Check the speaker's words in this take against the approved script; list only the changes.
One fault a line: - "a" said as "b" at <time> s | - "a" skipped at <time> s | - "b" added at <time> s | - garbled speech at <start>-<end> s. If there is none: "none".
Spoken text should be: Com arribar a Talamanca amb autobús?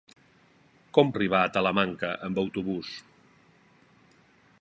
none